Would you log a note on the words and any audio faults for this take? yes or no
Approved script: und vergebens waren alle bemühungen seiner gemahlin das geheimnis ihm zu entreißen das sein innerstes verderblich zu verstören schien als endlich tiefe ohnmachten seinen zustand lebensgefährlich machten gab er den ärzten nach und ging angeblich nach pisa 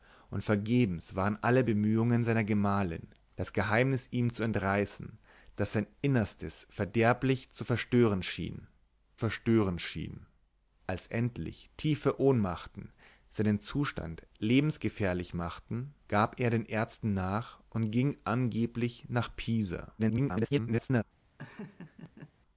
yes